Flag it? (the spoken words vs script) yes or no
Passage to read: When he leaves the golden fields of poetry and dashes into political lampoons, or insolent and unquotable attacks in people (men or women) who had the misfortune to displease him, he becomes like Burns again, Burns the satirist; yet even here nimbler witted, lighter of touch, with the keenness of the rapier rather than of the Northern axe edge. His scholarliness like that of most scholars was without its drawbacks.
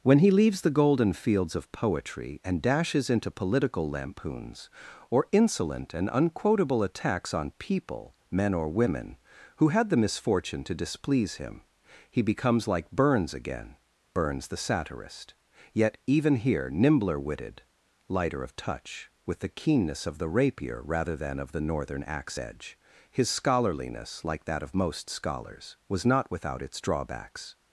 yes